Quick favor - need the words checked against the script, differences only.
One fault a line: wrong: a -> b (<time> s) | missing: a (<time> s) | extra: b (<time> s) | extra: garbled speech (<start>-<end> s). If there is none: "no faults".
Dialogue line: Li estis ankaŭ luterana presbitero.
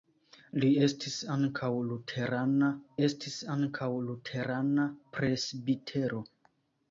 extra: estis ankaŭ luterana (3.1 s)